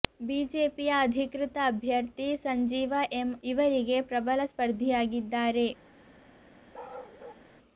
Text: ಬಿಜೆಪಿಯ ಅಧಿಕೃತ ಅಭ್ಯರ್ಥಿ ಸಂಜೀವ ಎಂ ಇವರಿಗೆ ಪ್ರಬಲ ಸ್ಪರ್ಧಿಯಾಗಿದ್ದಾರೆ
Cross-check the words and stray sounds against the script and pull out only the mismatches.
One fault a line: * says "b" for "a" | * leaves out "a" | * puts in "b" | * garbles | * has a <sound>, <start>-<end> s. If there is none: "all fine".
* has a bark, 6.7-7.5 s